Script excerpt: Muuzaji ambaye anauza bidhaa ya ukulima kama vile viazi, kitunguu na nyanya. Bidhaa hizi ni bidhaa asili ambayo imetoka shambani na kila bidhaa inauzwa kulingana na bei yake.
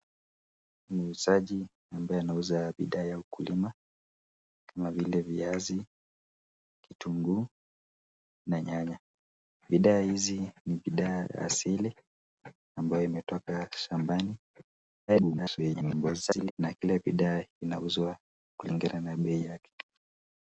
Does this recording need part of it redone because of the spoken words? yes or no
yes